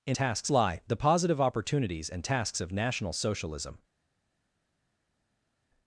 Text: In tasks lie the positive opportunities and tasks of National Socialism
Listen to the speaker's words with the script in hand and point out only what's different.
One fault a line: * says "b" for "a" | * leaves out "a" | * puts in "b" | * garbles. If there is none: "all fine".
all fine